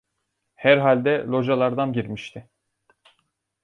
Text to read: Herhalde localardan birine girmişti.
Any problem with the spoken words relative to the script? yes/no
yes